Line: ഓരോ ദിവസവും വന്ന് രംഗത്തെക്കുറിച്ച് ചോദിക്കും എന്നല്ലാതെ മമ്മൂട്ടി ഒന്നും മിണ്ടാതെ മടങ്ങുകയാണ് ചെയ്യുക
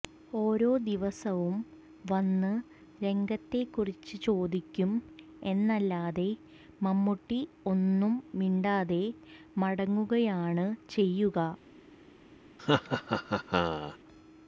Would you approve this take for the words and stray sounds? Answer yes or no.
no